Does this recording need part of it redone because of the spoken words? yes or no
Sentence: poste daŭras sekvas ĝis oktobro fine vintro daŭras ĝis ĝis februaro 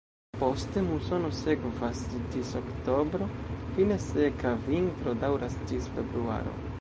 yes